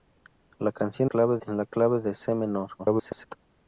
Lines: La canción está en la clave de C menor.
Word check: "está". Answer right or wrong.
wrong